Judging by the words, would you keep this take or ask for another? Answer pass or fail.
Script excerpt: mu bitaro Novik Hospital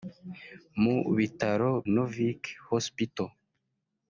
pass